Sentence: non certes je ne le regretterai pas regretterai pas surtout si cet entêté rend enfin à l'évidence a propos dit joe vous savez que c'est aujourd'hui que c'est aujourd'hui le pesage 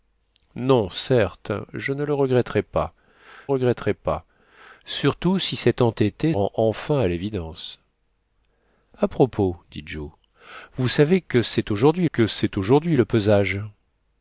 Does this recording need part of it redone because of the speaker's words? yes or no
no